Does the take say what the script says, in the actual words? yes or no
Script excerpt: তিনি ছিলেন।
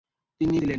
yes